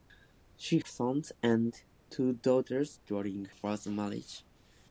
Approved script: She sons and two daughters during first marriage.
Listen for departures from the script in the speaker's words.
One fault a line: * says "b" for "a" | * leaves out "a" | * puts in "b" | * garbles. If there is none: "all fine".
all fine